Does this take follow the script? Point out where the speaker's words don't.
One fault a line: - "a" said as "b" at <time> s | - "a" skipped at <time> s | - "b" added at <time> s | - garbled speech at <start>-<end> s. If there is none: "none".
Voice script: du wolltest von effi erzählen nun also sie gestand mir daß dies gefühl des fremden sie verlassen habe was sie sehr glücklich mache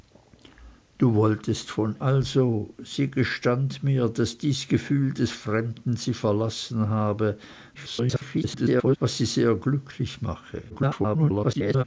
- "effi erzählen nun" skipped at 1.9 s
- garbled speech at 7.7-9.0 s
- garbled speech at 10.7-11.8 s